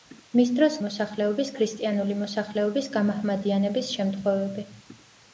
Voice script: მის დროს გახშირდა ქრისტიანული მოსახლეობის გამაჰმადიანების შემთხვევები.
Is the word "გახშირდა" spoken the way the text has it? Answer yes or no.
no